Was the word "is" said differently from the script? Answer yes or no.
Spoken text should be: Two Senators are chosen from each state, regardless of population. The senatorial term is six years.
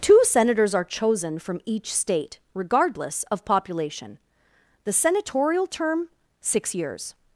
yes